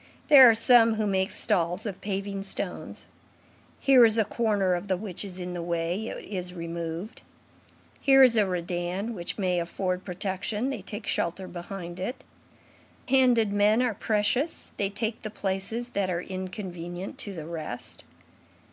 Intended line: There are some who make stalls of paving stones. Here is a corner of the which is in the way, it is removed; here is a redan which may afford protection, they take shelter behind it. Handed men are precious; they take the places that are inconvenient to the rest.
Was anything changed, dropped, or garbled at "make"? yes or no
no